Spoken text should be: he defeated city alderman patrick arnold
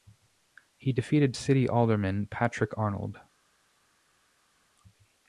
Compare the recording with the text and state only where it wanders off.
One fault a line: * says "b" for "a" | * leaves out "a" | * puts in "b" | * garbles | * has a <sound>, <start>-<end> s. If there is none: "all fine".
all fine